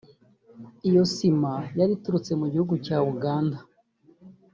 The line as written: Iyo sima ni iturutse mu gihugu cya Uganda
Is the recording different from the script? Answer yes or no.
yes